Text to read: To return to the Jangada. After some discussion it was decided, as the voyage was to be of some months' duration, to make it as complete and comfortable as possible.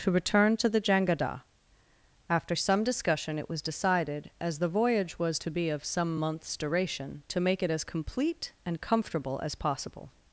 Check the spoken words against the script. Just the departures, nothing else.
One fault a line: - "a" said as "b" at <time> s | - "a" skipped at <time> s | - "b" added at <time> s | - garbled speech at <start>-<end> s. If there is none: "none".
none